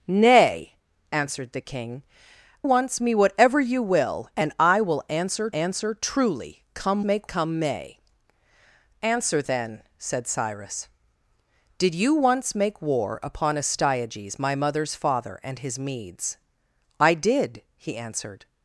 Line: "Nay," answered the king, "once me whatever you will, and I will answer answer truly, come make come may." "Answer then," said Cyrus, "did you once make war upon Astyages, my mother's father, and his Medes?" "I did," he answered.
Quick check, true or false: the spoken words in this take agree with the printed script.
true